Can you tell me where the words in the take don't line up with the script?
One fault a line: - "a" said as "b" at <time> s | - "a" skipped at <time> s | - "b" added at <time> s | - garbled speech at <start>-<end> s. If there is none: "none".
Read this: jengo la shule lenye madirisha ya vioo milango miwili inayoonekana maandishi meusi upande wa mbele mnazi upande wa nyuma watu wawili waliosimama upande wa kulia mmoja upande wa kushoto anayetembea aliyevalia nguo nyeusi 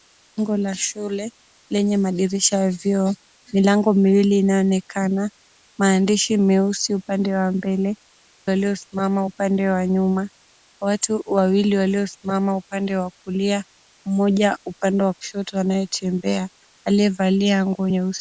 - "mnazi" said as "waliosimama" at 8.4 s